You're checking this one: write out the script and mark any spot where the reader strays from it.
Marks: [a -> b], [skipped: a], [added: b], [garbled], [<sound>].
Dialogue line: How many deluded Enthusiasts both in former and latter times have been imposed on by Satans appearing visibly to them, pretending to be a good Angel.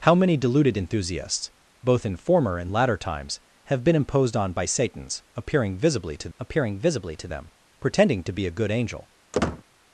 How many deluded Enthusiasts both in former and latter times have been imposed on by Satans appearing visibly to [added: appearing visibly to] them, pretending to be a good Angel. [squeak]